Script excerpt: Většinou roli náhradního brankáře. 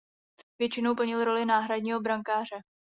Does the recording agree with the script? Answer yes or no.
no